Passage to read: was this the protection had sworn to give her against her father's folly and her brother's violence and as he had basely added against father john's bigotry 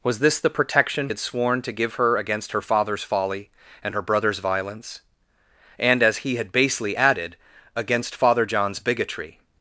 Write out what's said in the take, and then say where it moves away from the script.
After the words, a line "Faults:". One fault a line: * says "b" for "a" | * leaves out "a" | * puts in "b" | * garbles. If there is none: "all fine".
was this the protection had sworn to give her against her father's folly and her brother's violence and as he had basely added against father john's bigotry
Faults:
all fine